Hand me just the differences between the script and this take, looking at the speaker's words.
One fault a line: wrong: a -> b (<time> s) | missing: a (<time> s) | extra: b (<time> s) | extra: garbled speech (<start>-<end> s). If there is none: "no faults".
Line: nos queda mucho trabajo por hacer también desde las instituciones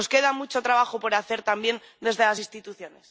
no faults